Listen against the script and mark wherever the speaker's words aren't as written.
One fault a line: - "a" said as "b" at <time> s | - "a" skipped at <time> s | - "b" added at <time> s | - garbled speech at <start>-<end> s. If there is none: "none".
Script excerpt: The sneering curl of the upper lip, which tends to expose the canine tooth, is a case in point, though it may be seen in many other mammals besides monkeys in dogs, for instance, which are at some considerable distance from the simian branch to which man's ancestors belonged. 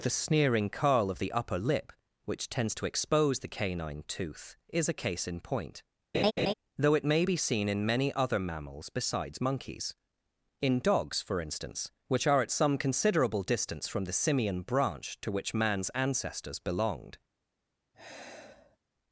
none